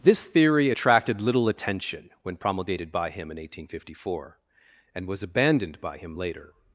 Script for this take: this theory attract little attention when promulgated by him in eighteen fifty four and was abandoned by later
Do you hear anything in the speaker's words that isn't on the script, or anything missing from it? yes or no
yes